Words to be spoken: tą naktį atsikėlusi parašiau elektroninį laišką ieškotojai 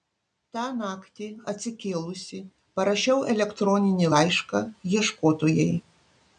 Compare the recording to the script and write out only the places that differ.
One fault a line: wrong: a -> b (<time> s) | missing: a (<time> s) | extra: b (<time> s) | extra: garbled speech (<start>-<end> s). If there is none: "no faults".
no faults